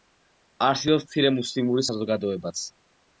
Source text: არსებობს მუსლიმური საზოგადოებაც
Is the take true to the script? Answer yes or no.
no